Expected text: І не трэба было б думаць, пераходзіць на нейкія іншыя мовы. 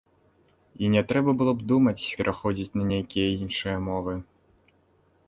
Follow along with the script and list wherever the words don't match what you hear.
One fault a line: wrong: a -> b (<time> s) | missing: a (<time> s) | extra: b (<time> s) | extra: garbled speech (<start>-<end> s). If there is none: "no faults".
no faults